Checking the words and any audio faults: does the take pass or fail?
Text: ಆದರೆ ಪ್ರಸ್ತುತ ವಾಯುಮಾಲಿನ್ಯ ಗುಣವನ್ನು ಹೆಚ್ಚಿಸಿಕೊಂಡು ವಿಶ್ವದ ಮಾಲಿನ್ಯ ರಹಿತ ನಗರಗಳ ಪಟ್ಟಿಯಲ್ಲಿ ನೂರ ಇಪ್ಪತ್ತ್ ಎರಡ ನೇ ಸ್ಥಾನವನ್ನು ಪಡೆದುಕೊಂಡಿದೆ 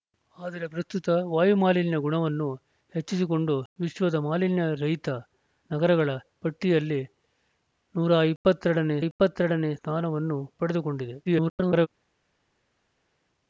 fail